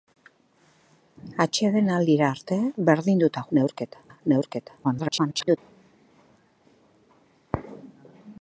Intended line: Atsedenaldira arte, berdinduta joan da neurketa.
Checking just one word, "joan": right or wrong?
wrong